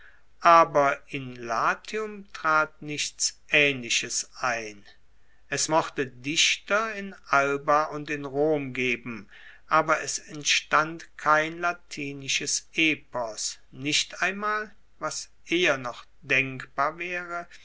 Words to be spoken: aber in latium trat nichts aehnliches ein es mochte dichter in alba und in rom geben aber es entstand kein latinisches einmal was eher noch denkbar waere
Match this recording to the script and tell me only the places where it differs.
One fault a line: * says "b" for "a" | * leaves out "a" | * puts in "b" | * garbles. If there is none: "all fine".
* puts in "epos nicht"